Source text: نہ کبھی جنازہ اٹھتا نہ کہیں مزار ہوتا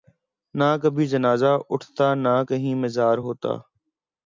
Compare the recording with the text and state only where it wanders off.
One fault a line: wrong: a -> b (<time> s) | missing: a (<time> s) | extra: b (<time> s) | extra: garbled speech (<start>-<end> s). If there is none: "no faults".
no faults